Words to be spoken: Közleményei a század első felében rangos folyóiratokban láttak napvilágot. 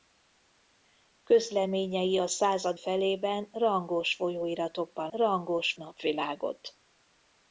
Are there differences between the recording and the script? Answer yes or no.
yes